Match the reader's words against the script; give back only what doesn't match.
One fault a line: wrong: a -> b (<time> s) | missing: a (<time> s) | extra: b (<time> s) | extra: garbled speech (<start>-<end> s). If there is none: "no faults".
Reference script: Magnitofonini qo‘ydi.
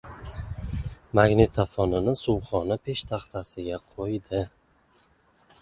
extra: suvxona peshtaxtasiga (2.2 s)